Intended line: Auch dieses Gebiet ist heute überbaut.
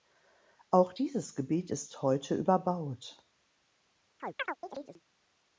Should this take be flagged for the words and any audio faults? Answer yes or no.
yes